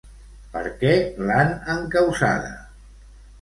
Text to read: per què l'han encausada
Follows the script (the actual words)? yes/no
yes